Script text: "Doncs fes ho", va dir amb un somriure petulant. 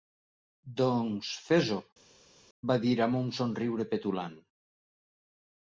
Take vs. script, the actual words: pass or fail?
pass